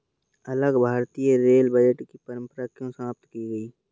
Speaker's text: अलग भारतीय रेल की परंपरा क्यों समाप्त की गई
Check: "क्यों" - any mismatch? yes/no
no